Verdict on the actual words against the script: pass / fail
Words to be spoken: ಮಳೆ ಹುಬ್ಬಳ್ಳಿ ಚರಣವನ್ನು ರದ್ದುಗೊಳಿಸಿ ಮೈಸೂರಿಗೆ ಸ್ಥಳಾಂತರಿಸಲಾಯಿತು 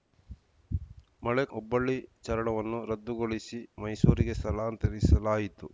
pass